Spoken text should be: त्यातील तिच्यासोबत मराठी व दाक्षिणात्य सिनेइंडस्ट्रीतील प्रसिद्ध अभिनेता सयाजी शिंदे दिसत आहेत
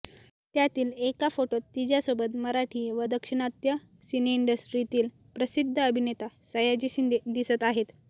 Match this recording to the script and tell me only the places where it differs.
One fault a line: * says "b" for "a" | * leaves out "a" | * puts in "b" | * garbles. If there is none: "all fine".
* puts in "एका फोटोत"